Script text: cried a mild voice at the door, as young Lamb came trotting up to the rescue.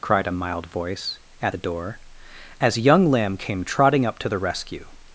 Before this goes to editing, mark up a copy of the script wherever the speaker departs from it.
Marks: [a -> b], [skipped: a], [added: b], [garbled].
cried a mild voice at the door, as young Lamb came trotting up to the rescue.